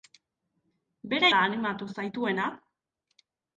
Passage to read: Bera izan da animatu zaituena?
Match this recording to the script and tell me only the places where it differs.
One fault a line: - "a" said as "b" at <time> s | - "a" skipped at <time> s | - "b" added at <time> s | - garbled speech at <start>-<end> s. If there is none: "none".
- "izan" skipped at 1.3 s